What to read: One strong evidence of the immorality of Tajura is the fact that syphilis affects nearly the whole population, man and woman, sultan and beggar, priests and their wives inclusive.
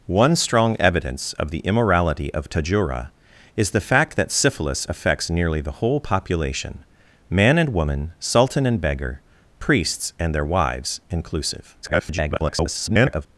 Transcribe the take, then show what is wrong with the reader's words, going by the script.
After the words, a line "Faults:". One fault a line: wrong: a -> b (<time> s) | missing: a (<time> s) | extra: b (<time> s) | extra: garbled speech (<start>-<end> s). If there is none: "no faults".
One strong evidence of the immorality of Tajura is the fact that syphilis affects nearly the whole population, man and woman, sultan and beggar, priests and their wives inclusive. [garbled]
Faults:
extra: garbled speech (11.8-13.3 s)